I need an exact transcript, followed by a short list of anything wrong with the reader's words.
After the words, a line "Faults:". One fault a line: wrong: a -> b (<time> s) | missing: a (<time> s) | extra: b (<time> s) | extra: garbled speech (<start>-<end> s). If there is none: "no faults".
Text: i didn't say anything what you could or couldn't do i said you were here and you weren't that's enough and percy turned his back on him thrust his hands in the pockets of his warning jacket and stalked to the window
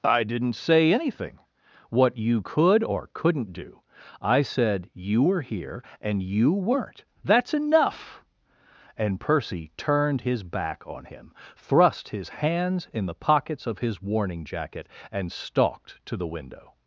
i didn't say anything what you could or couldn't do i said you were here and you weren't that's enough and percy turned his back on him thrust his hands in the pockets of his warning jacket and stalked to the window
Faults:
no faults